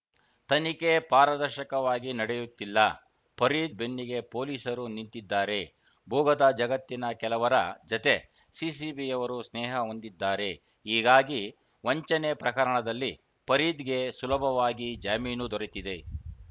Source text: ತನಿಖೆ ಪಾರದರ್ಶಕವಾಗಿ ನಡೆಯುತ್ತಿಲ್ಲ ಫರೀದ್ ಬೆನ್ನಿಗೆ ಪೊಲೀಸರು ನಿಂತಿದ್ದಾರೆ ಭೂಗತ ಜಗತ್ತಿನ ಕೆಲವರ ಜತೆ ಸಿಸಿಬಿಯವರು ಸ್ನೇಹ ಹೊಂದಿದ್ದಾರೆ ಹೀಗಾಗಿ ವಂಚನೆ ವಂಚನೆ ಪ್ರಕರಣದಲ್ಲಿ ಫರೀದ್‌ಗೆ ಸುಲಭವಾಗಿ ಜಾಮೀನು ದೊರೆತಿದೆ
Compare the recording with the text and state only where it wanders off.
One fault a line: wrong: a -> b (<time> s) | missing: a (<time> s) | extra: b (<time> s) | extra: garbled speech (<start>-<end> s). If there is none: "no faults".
missing: ವಂಚನೆ (12.3 s)